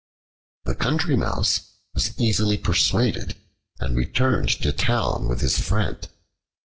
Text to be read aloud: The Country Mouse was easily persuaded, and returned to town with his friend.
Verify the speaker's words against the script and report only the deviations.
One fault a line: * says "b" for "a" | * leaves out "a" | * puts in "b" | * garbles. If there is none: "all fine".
all fine